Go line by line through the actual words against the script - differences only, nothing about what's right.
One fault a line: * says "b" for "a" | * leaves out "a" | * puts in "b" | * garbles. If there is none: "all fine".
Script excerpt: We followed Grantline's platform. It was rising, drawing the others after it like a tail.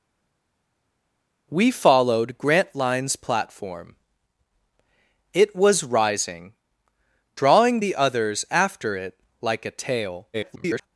* garbles